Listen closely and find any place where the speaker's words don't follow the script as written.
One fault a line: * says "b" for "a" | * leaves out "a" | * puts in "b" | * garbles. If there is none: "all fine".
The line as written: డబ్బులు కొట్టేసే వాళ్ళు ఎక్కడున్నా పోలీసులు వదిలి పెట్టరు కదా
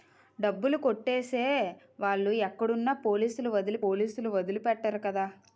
* puts in "పోలీసులు వదిలి"